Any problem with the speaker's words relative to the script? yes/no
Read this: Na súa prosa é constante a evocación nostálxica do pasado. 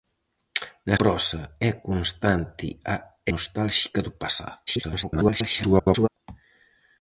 yes